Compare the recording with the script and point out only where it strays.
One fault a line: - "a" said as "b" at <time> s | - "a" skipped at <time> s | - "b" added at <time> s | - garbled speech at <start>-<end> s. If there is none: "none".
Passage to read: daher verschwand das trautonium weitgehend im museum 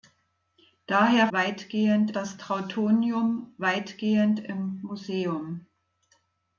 - "verschwand" said as "weitgehend" at 1.3 s